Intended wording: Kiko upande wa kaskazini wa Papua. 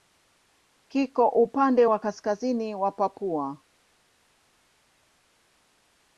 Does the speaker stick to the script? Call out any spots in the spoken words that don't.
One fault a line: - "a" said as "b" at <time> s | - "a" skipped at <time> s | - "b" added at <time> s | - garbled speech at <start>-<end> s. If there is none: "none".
none